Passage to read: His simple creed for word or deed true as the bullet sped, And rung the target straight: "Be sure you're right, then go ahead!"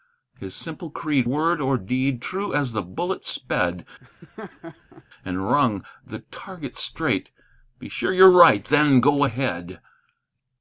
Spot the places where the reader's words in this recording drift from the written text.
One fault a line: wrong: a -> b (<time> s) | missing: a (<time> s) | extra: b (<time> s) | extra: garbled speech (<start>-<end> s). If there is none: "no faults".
missing: for (1.3 s)